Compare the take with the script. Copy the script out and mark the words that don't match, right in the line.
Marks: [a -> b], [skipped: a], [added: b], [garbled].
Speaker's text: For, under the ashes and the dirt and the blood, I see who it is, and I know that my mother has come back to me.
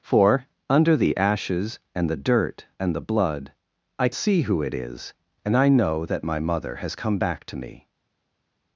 For, under the ashes and the dirt and the blood, I see who it is, and I know that my mother has come back to me.